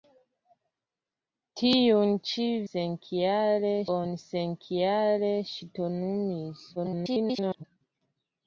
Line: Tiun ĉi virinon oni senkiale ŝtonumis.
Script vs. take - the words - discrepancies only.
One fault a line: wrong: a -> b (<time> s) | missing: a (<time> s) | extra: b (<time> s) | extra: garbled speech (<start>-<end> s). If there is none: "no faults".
wrong: virinon -> senkiale (2.7 s)
extra: garbled speech (6.8-7.6 s)